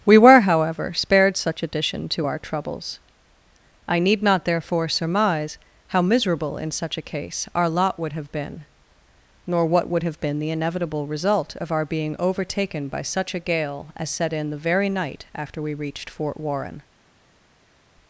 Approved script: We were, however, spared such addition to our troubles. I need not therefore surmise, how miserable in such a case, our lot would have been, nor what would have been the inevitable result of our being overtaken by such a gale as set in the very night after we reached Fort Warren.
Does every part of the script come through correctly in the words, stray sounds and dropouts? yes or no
yes